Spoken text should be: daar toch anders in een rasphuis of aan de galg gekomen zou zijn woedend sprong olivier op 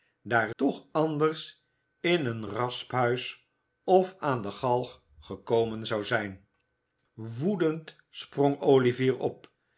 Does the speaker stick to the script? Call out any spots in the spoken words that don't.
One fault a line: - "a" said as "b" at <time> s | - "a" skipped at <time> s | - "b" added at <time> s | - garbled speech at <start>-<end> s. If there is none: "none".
none